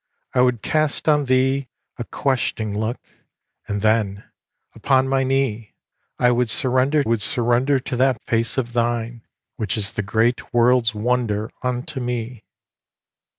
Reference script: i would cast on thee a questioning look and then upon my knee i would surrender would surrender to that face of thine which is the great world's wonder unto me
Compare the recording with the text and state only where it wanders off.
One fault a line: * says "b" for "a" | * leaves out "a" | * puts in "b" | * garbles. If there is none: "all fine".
all fine